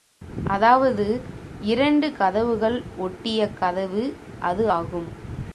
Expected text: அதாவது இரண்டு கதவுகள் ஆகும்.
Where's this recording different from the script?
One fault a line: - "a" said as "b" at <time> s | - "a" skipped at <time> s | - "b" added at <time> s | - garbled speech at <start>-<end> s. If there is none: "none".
- "ஒட்டிய கதவு அது" added at 3.0 s